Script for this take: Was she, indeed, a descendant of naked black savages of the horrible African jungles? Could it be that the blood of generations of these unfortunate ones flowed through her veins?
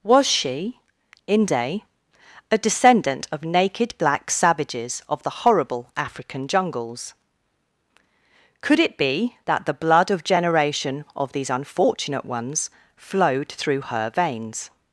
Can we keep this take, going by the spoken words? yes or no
no